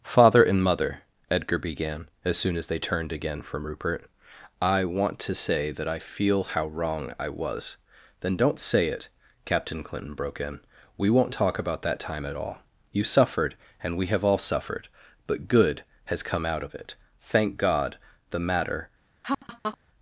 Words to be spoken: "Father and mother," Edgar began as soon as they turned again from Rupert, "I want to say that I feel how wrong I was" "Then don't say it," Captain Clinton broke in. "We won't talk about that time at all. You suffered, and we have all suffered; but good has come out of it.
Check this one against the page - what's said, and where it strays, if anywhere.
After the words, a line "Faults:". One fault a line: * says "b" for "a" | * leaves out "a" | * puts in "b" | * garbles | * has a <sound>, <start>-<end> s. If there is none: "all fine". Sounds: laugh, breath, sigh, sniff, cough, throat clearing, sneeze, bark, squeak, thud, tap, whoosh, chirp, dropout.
"Father and mother," Edgar began as soon as they turned again from Rupert, "I want to say that I feel how wrong I was" "Then don't say it," Captain Clinton broke in. "We won't talk about that time at all. You suffered, and we have all suffered; but good has come out of it. Thank God the matter
Faults:
* puts in "Thank God the matter"
* has a laugh, 19.2-19.8 s